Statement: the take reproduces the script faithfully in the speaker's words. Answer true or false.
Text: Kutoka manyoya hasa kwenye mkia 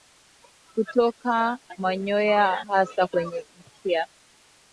true